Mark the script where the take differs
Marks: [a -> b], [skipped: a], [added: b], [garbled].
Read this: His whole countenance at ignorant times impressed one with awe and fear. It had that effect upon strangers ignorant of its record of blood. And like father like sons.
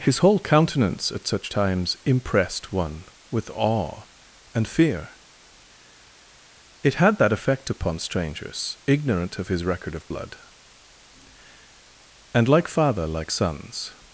His whole countenance at [ignorant -> such] times impressed one with awe and fear. It had that effect upon strangers ignorant of [its -> his] record of blood. And like father like sons.